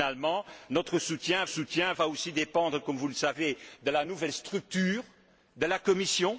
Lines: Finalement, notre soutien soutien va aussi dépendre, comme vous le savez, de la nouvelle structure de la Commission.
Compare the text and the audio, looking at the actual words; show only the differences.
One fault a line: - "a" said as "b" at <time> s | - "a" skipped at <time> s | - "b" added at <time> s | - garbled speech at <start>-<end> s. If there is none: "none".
none